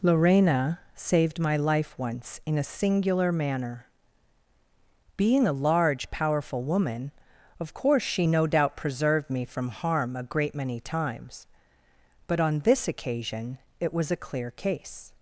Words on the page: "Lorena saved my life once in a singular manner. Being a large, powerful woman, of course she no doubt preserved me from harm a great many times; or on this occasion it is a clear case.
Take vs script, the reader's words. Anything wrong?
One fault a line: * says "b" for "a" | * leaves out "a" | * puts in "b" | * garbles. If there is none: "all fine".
* says "but" for "or"
* says "was" for "is"